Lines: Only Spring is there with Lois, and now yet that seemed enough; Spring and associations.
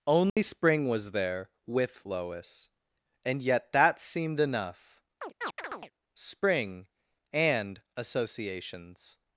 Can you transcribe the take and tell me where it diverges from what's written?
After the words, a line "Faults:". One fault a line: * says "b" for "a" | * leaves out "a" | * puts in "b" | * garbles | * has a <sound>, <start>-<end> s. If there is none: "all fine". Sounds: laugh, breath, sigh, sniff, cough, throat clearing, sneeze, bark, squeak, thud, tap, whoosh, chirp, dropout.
Only Spring was there with Lois, and yet that seemed enough; Spring and associations.
Faults:
* has a dropout, 0.3-0.4 s
* says "was" for "is"
* leaves out "now"
* has a chirp, 5.2-5.9 s